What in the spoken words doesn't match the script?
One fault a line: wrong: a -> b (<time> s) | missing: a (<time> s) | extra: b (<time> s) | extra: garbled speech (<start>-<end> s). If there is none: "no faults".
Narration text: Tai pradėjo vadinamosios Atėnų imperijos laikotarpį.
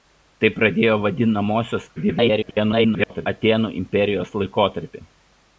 extra: garbled speech (2.0-3.3 s)